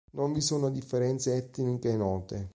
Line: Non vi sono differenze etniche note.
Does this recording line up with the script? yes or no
yes